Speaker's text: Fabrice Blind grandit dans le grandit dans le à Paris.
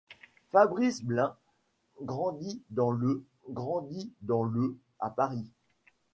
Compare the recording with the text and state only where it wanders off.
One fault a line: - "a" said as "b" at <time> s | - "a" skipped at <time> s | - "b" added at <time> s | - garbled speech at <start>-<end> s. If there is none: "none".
none